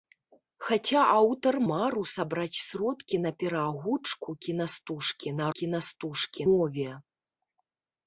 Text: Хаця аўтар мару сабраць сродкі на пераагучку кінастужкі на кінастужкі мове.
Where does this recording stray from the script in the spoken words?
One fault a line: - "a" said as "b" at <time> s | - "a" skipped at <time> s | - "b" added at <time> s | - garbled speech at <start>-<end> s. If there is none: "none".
none